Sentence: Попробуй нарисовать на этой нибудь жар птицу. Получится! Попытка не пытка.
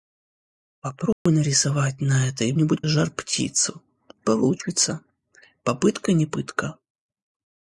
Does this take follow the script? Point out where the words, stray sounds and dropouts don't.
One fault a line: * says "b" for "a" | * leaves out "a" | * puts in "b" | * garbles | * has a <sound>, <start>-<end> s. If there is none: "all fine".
* has a dropout, 1.1-1.3 s